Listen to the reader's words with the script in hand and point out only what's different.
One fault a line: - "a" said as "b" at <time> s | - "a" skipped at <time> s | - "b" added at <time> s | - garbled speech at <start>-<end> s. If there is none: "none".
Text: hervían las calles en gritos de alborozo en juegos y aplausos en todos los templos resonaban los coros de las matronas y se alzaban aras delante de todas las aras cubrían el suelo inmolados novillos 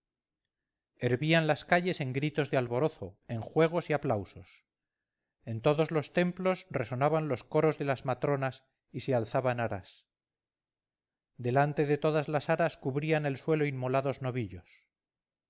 none